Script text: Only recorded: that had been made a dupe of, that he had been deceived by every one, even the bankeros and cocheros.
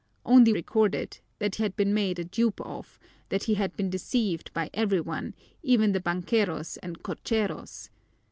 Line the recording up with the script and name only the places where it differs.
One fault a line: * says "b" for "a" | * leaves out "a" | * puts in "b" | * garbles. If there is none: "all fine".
all fine